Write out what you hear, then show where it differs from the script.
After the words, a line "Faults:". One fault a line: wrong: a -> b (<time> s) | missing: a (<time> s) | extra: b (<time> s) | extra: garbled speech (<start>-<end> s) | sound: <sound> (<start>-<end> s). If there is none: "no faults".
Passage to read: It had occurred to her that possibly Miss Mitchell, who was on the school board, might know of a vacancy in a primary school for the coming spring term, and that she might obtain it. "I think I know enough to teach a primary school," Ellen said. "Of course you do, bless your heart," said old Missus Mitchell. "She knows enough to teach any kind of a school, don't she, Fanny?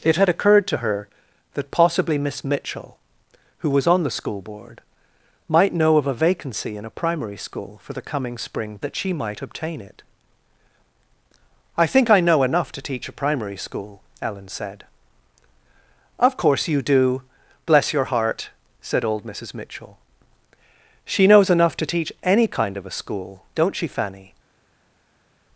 It had occurred to her that possibly Miss Mitchell, who was on the school board, might know of a vacancy in a primary school for the coming spring that she might obtain it. "I think I know enough to teach a primary school," Ellen said. "Of course you do, bless your heart," said old Missus Mitchell. "She knows enough to teach any kind of a school, don't she, Fanny?
Faults:
missing: term and (8.8 s)